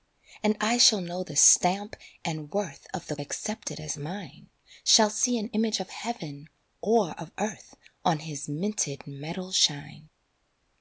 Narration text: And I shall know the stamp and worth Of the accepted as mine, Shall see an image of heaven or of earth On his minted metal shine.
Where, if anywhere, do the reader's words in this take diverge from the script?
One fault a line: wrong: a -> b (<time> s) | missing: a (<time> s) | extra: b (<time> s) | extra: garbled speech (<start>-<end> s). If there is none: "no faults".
no faults